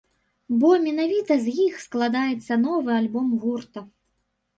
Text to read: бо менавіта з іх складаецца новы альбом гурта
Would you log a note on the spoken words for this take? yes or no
no